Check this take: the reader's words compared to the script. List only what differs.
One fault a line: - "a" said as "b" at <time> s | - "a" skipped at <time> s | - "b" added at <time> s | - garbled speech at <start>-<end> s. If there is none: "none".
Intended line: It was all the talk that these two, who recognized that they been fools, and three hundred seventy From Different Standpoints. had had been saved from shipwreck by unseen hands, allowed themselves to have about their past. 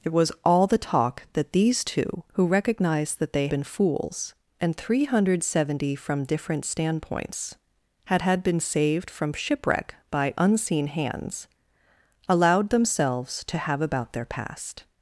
none